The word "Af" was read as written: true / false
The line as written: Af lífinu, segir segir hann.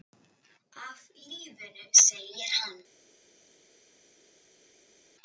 true